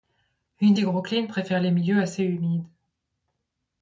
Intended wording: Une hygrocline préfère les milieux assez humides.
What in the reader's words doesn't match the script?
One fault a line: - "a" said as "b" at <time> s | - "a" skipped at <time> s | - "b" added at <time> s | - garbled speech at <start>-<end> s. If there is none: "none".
none